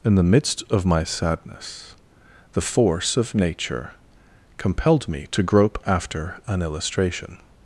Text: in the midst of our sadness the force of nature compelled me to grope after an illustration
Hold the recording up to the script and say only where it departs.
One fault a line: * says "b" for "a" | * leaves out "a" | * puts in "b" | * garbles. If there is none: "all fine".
* says "my" for "our"